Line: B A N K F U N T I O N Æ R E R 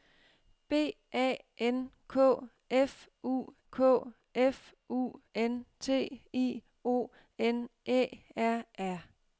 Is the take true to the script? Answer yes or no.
no